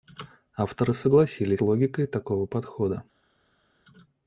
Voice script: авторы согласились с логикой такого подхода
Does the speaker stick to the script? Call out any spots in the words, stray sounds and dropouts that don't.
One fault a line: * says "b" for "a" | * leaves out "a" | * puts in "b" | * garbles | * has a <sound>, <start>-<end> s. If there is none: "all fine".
* leaves out "с"